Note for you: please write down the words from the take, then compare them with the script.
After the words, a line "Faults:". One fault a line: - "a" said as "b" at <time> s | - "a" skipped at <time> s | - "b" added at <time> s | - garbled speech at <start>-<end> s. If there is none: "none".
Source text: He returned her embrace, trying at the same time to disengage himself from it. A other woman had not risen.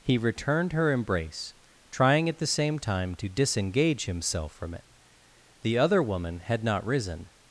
He returned her embrace, trying at the same time to disengage himself from it. The other woman had not risen.
Faults:
- "A" said as "The" at 5.6 s